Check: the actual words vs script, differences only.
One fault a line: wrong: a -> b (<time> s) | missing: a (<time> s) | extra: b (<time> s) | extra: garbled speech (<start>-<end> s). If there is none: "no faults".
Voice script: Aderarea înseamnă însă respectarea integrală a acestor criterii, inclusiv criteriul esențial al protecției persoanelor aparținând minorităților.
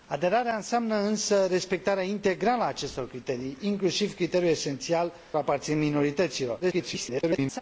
missing: al protecției persoanelor (5.1 s)
extra: garbled speech (6.6-7.6 s)